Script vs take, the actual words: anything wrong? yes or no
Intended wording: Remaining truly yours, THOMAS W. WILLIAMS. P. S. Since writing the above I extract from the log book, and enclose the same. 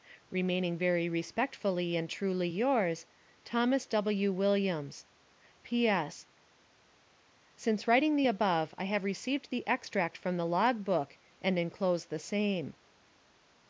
yes